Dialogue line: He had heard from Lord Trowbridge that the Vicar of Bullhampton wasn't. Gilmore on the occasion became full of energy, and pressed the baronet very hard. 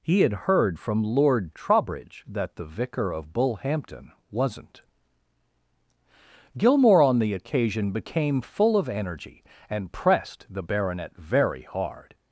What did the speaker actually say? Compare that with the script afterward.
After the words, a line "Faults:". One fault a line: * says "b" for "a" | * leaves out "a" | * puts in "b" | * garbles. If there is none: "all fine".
He had heard from Lord Trowbridge that the Vicar of Bullhampton wasn't. Gilmore on the occasion became full of energy, and pressed the baronet very hard.
Faults:
all fine